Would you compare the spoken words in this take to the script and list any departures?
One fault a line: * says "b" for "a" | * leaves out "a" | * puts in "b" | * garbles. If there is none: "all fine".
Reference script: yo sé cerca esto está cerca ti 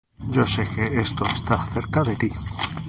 * says "que" for "cerca"
* puts in "de"